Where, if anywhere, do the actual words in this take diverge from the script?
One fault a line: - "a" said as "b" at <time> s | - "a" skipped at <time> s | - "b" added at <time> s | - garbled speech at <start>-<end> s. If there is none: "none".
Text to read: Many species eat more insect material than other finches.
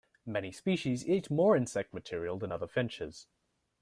none